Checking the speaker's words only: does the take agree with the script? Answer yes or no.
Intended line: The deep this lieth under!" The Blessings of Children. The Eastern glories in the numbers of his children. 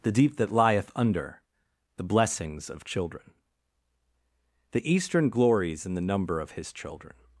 no